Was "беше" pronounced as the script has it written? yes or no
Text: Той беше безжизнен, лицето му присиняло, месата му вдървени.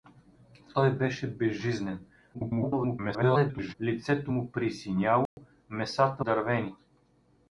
yes